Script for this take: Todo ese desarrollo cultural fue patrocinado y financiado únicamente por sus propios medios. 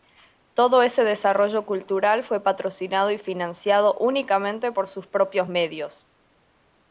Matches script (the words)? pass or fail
pass